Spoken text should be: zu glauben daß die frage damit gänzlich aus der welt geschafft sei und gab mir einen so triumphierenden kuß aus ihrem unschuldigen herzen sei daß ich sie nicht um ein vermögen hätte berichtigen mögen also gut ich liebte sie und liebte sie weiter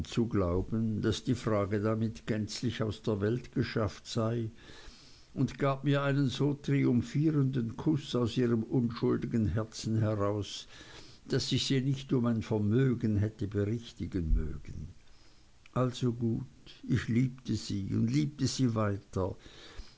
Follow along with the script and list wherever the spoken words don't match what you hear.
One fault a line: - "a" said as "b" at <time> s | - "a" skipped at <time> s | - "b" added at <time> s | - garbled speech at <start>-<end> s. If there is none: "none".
- "sei" said as "heraus" at 10.0 s